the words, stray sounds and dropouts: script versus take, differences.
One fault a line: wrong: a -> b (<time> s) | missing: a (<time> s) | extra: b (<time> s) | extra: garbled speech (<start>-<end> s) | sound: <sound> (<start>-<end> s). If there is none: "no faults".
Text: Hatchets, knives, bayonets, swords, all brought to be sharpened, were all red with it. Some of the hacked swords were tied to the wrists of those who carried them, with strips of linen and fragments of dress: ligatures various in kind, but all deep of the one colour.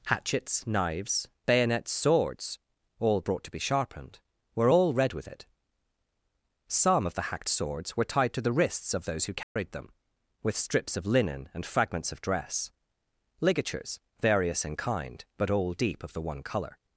sound: dropout (9.4-9.6 s)